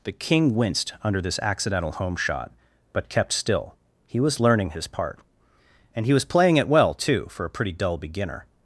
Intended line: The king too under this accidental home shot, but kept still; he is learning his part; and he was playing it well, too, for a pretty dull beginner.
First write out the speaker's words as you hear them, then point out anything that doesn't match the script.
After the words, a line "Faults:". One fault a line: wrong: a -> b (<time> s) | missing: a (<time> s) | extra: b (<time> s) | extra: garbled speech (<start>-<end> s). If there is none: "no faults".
The king winced under this accidental home shot, but kept still; he was learning his part; and he was playing it well, too, for a pretty dull beginner.
Faults:
wrong: too -> winced (0.6 s)
wrong: is -> was (4.2 s)